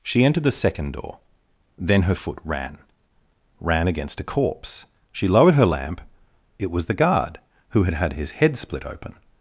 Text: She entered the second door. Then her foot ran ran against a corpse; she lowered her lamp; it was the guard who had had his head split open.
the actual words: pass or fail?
pass